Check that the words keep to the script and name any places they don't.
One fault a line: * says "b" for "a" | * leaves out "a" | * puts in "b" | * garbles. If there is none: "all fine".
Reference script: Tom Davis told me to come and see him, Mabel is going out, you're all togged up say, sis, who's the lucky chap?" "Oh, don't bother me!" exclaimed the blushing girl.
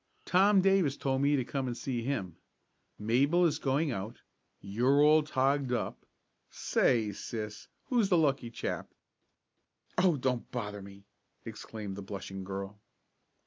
all fine